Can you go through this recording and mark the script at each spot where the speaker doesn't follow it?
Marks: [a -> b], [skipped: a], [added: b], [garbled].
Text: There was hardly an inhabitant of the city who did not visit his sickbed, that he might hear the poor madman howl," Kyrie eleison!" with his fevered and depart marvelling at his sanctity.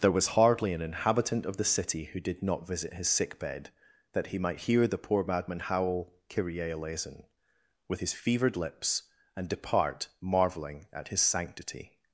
There was hardly an inhabitant of the city who did not visit his sickbed, that he might hear the poor madman howl," Kyrie eleison!" with his fevered [added: lips] and depart marvelling at his sanctity.